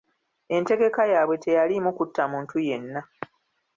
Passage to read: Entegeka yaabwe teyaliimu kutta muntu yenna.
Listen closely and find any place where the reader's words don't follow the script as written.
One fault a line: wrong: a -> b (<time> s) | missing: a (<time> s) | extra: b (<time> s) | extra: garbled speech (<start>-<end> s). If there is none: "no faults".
no faults